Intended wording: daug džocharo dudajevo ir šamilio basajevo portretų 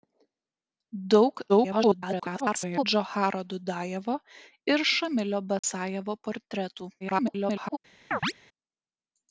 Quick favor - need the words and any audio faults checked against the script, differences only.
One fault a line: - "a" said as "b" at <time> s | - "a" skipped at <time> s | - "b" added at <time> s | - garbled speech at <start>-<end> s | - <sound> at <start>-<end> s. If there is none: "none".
- garbled speech at 1.5-2.8 s
- dropout at 5.6-5.6 s
- garbled speech at 7.0-7.8 s
- chirp at 8.1-8.3 s